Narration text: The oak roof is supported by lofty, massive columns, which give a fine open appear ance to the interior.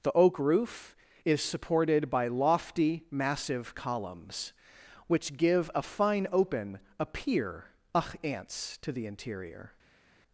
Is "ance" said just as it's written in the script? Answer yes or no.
no